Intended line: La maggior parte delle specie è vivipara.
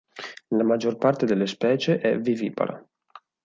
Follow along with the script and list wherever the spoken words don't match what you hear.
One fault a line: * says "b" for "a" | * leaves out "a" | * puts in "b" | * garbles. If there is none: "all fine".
all fine